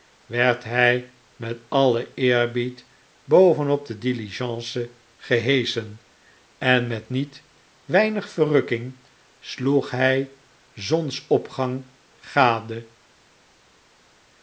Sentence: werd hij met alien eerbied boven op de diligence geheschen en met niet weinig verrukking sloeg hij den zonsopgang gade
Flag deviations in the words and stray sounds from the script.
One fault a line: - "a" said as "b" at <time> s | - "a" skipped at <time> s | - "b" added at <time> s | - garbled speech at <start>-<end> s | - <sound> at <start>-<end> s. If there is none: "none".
- "den" skipped at 10.3 s